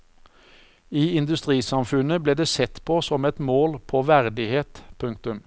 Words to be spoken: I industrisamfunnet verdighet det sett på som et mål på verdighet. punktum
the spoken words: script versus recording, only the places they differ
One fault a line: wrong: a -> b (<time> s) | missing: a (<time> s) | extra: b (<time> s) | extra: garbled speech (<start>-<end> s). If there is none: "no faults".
wrong: verdighet -> ble (2.2 s)